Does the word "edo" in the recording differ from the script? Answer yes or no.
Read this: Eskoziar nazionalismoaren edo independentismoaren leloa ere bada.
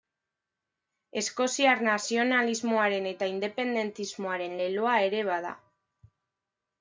yes